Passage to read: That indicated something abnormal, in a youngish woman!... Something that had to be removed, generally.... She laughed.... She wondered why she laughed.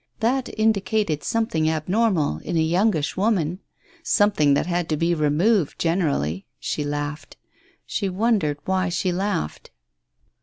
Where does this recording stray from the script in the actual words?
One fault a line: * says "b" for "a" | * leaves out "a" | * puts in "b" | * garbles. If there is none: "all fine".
all fine